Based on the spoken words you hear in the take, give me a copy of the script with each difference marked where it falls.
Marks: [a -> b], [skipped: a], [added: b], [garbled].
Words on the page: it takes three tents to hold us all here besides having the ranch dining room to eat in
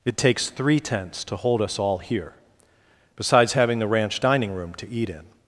it takes three tents to hold us all here besides having the ranch dining room to eat in